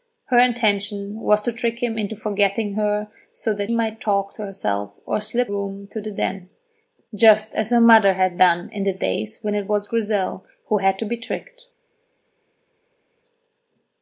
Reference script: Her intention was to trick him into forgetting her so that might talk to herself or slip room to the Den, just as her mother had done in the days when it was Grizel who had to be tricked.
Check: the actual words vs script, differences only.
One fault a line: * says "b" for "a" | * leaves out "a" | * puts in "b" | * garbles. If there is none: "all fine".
all fine